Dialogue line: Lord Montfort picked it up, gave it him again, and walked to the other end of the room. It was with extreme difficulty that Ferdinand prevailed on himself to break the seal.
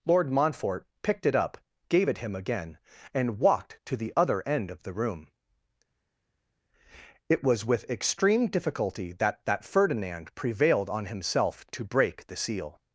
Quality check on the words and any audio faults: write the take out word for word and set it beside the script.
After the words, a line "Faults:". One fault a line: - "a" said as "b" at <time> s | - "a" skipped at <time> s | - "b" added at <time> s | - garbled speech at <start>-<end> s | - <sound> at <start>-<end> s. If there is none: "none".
Lord Montfort picked it up, gave it him again, and walked to the other end of the room. It was with extreme difficulty that that Ferdinand prevailed on himself to break the seal.
Faults:
- "that" added at 9.5 s